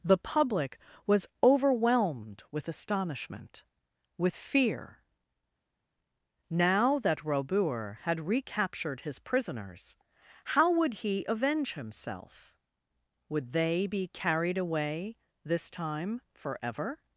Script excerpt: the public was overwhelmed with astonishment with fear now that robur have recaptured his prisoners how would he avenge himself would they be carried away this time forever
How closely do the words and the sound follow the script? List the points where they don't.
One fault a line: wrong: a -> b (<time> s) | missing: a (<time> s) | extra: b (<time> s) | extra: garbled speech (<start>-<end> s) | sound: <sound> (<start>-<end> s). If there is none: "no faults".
wrong: have -> had (8.0 s)